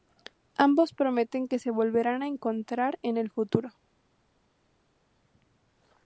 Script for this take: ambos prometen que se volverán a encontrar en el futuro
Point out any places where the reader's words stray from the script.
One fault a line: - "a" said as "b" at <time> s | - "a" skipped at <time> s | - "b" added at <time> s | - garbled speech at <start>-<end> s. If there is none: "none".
none